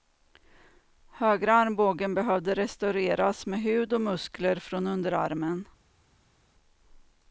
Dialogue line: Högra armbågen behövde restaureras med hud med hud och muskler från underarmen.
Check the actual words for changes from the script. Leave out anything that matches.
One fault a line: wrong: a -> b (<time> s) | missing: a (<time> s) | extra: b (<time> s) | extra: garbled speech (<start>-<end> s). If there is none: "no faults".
missing: med hud (3.9 s)